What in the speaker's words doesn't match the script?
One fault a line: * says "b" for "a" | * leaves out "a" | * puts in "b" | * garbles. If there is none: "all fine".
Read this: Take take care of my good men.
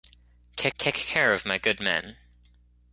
all fine